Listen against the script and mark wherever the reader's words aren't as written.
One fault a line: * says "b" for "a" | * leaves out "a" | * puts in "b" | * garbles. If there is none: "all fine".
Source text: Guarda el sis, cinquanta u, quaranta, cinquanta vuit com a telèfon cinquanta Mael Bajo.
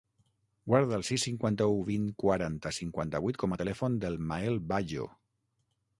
* puts in "vint"
* says "del" for "cinquanta"